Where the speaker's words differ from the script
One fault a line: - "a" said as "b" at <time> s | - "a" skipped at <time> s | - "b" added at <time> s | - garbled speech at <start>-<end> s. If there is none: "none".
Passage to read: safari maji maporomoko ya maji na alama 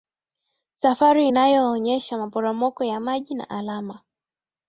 - "maji" said as "inayoonyesha" at 1.2 s